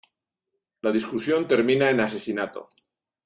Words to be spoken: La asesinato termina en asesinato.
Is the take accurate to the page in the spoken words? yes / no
no